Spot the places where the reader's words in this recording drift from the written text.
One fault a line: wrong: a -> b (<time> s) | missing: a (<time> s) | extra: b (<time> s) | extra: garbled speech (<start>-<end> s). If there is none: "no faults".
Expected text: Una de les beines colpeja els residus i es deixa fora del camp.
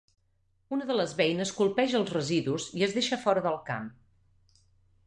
no faults